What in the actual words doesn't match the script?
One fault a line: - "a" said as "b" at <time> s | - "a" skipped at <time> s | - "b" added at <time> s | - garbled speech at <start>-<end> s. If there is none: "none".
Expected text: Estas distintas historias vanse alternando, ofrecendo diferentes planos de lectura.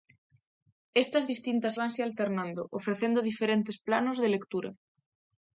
- "historias" skipped at 1.7 s